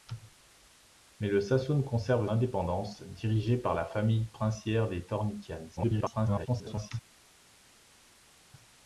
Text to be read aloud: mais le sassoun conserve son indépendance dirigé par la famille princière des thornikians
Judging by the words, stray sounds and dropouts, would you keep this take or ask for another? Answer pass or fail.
fail